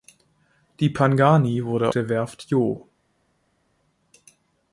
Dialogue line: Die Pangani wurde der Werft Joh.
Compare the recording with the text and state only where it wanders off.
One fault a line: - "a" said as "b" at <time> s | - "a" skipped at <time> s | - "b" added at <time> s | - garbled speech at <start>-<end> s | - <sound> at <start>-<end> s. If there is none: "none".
none